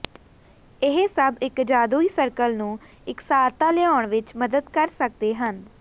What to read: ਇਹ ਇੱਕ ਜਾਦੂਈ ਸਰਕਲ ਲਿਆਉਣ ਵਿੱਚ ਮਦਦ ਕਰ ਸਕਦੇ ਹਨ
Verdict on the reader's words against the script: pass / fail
fail